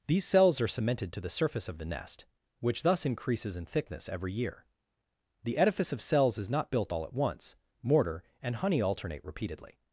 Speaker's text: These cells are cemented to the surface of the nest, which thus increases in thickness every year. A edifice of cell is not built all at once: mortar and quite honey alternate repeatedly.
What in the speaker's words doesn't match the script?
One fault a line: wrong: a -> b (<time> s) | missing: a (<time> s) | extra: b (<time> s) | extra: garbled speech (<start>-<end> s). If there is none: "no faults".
wrong: A -> The (5.4 s)
wrong: cell -> cells (6.0 s)
missing: quite (8.6 s)